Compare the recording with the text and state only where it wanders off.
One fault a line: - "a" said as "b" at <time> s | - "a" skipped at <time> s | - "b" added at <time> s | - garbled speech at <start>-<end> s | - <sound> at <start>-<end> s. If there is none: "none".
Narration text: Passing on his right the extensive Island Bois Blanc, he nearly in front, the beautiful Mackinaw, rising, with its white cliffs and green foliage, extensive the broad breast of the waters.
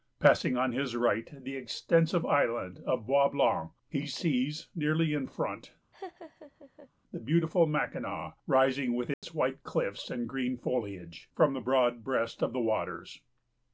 - "of" added at 2.9 s
- "sees" added at 4.1 s
- laugh at 5.9-6.9 s
- dropout at 9.1-9.2 s
- "extensive" said as "from" at 11.3 s